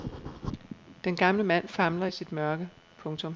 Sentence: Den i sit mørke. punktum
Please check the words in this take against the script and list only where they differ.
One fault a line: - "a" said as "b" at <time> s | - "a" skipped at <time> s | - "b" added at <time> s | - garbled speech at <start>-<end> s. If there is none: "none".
- "gamle mand famler" added at 1.1 s